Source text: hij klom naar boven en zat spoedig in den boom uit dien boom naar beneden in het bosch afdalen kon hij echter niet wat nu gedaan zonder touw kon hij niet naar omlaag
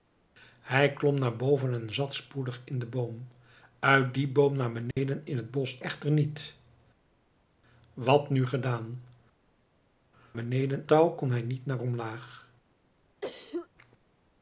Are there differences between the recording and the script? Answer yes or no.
yes